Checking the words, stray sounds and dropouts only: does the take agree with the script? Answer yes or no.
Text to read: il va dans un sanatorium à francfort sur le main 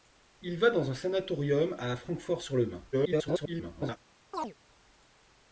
no